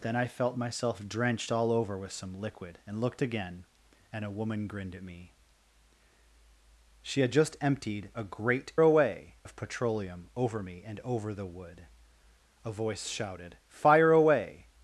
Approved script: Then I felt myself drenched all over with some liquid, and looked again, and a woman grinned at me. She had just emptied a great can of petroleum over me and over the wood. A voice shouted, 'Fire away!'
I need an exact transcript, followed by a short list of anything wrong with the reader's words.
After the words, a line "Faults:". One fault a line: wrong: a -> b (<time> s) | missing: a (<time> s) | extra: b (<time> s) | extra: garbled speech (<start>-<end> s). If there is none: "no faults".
Then I felt myself drenched all over with some liquid, and looked again, and a woman grinned at me. She had just emptied a great away of petroleum over me and over the wood. A voice shouted, 'Fire away!'
Faults:
wrong: can -> away (8.8 s)